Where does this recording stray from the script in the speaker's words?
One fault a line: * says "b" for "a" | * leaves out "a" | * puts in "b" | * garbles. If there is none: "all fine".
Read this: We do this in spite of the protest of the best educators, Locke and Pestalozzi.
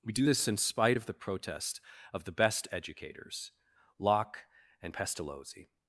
all fine